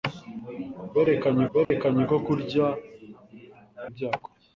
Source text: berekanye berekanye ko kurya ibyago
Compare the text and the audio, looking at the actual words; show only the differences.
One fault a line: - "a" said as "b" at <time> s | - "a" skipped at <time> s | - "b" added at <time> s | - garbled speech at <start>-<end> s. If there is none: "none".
none